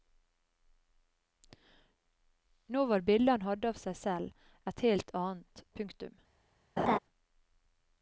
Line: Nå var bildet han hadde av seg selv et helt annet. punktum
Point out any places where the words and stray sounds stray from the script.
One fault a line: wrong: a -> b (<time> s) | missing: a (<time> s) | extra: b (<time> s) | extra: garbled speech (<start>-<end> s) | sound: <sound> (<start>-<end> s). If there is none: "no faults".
sound: laugh (6.8-7.0 s)